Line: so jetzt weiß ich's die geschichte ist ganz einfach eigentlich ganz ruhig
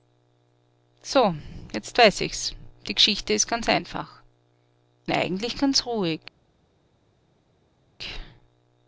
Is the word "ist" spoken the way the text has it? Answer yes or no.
yes